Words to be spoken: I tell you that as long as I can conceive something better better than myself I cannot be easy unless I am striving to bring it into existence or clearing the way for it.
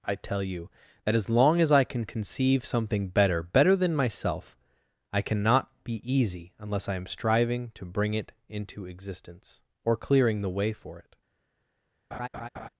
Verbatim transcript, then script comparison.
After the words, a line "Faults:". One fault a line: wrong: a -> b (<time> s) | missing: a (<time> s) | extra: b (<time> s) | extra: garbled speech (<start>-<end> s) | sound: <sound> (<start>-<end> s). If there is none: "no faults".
I tell you that as long as I can conceive something better better than myself I cannot be easy unless I am striving to bring it into existence or clearing the way for it.
Faults:
sound: laugh (12.1-12.7 s)